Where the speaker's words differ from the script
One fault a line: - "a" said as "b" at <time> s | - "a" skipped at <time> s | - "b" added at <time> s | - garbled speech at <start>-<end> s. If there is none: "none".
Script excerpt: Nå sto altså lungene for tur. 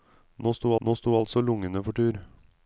- "nå sto" added at 0.8 s